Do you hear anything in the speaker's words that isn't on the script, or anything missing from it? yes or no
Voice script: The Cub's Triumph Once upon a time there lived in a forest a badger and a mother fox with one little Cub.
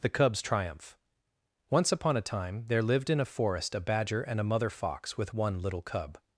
no